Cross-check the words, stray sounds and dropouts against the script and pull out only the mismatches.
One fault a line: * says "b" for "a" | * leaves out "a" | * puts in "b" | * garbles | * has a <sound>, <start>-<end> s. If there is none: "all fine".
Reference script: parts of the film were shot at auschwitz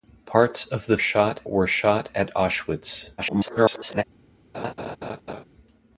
* says "shot" for "film"
* garbles
* has a laugh, 4.5-5.4 s